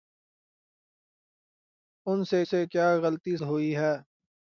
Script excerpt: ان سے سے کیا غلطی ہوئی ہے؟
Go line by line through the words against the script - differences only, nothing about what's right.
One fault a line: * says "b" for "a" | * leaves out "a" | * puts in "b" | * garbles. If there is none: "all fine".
all fine